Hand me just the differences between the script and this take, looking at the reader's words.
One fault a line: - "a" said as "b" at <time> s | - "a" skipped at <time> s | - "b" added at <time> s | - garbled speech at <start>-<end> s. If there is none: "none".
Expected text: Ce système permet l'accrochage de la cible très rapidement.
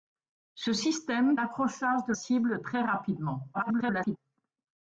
- "permet" skipped at 1.4 s
- "la" skipped at 2.1 s
- garbled speech at 3.5-4.2 s